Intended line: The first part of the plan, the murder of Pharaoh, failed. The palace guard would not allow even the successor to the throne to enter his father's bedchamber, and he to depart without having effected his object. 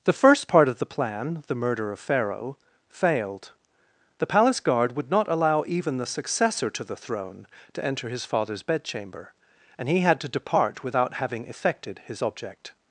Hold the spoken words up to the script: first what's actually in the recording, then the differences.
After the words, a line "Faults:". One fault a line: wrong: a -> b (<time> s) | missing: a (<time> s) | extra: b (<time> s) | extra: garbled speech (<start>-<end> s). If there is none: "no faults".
The first part of the plan, the murder of Pharaoh, failed. The palace guard would not allow even the successor to the throne to enter his father's bedchamber, and he had to depart without having effected his object.
Faults:
extra: had (10.0 s)